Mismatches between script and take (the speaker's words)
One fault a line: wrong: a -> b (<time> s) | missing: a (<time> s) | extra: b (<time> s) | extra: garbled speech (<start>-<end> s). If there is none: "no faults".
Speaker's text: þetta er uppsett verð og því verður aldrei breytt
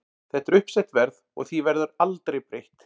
no faults